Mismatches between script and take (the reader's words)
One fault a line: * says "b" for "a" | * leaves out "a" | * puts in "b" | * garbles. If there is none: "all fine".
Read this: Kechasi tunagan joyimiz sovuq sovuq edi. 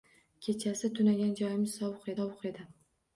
all fine